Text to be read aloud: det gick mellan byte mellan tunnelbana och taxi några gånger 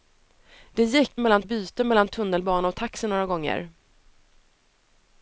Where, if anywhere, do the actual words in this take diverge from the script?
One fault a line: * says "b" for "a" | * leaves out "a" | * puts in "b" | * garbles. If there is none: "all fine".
all fine